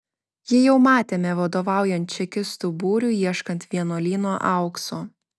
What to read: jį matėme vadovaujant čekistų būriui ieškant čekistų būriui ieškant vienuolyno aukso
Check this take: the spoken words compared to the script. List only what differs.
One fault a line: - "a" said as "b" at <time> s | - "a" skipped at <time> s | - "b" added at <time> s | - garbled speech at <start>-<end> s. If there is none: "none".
- "jau" added at 0.6 s
- "čekistų būriui ieškant" skipped at 3.7 s